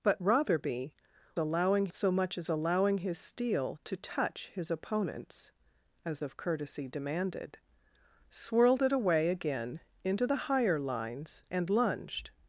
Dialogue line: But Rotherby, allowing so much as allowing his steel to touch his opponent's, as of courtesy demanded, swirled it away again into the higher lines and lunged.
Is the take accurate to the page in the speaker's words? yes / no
yes